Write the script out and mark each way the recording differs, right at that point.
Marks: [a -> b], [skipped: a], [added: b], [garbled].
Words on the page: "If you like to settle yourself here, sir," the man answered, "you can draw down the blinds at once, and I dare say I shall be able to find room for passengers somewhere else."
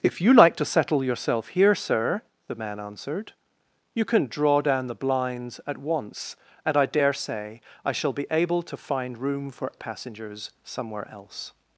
"If you like to settle yourself here, sir," the man answered, "you can draw down the blinds at once, and I dare say I shall be able to find room for passengers somewhere else."